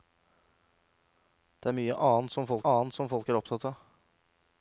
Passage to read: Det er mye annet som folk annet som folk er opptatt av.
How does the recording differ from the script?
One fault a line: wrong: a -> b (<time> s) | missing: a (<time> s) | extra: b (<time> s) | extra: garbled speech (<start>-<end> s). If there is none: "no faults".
no faults